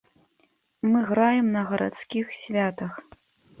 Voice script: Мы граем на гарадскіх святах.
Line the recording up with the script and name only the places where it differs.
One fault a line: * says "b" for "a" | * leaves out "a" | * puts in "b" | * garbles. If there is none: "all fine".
all fine